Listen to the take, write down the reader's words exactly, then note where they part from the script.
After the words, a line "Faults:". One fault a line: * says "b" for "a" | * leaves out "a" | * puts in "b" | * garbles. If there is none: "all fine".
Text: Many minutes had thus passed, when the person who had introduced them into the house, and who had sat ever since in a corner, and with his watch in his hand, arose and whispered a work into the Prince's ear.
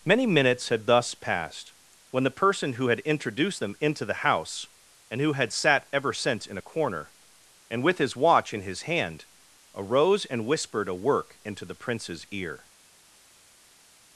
Many minutes had thus passed, when the person who had introduced them into the house, and who had sat ever since in a corner, and with his watch in his hand, arose and whispered a work into the Prince's ear.
Faults:
all fine